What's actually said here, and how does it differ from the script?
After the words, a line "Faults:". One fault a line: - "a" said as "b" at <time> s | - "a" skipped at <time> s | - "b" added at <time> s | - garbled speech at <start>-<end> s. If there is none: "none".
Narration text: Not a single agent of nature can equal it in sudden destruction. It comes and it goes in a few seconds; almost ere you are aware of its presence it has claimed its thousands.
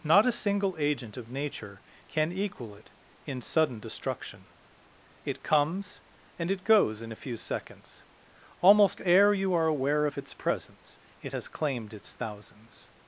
Not a single agent of nature can equal it in sudden destruction. It comes and it goes in a few seconds; almost ere you are aware of its presence it has claimed its thousands.
Faults:
none